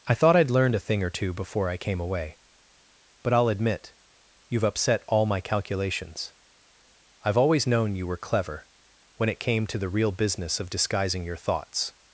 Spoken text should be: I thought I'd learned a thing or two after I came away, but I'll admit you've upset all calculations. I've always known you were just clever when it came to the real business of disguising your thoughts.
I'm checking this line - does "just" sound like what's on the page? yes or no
no